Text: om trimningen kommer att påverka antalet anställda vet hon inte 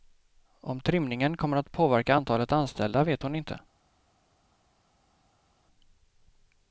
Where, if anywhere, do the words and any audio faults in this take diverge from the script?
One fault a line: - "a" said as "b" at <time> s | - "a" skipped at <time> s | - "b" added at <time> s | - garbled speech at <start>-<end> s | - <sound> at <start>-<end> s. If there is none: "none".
none